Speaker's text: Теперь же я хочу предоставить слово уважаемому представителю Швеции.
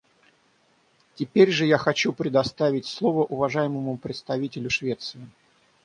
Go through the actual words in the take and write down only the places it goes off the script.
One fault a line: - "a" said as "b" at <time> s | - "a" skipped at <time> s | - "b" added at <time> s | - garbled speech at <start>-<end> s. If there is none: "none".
none